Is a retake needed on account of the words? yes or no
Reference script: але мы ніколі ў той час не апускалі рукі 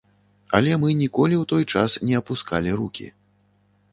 no